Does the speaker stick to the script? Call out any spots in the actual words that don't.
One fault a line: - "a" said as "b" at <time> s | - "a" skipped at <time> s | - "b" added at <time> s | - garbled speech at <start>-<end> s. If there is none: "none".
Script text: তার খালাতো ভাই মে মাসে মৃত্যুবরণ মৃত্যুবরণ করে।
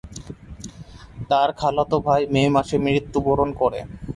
- "মৃত্যুবরণ" skipped at 3.5 s